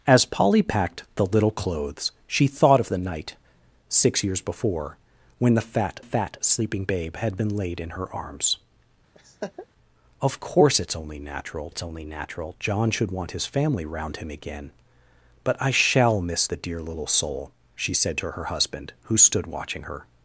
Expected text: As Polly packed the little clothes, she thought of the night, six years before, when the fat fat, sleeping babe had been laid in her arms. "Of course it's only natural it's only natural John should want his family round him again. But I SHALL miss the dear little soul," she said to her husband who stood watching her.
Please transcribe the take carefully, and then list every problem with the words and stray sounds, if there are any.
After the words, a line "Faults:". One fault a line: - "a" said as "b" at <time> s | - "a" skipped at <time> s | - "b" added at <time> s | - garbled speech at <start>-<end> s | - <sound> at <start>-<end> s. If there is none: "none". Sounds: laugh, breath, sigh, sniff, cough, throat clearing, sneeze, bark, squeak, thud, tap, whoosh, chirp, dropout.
As Polly packed the little clothes, she thought of the night, six years before, when the fat fat, sleeping babe had been laid in her arms. "Of course it's only natural it's only natural John should want his family round him again. But I SHALL miss the dear little soul," she said to her husband who stood watching her.
Faults:
- laugh at 9.1-9.7 s